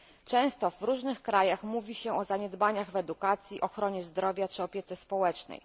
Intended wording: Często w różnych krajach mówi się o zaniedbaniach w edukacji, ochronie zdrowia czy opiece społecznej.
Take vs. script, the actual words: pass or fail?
pass